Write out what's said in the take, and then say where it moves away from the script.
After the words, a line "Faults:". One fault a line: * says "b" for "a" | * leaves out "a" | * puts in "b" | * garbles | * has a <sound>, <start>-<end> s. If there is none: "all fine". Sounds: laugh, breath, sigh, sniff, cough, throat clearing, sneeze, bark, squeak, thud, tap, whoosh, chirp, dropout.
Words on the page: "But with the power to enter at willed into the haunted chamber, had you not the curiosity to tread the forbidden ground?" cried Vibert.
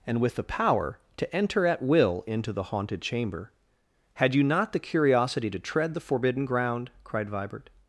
"And with the power to enter at will into the haunted chamber, had you not the curiosity to tread the forbidden ground?" cried Vibert.
Faults:
* says "And" for "But"
* says "will" for "willed"